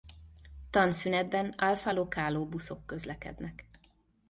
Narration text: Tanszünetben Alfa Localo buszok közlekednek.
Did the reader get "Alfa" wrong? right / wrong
right